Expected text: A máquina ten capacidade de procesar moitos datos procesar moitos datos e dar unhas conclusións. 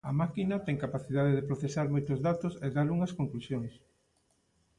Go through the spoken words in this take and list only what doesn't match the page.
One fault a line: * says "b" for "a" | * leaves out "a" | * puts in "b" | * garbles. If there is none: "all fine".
* leaves out "procesar moitos datos"